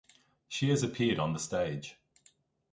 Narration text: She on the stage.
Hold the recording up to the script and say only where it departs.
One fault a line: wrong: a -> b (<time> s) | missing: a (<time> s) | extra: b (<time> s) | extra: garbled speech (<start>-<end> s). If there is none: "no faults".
extra: has appeared (0.7 s)